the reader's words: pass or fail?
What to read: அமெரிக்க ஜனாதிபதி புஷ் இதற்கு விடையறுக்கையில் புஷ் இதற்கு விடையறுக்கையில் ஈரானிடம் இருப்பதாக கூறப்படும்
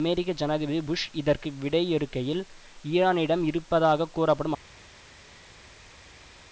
fail